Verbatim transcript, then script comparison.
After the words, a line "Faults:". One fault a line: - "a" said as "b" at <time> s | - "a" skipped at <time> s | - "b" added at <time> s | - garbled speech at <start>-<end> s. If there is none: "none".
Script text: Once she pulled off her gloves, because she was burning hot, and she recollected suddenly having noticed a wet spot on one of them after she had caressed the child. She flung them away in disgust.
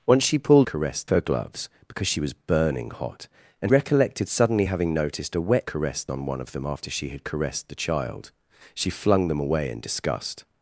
Once she pulled caressed her gloves, because she was burning hot, and recollected suddenly having noticed a wet caressed on one of them after she had caressed the child. She flung them away in disgust.
Faults:
- "off" said as "caressed" at 0.6 s
- "she" skipped at 3.7 s
- "spot" said as "caressed" at 5.6 s